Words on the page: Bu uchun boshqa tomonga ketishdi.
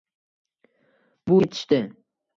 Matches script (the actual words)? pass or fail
fail